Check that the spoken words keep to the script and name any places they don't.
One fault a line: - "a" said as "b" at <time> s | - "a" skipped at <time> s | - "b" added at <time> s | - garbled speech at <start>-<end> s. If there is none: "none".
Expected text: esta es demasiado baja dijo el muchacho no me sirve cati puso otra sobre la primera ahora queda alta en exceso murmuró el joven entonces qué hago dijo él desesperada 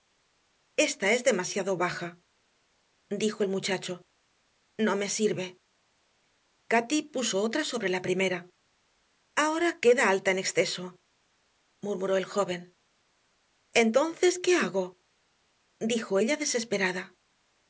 - "él" said as "ella" at 16.2 s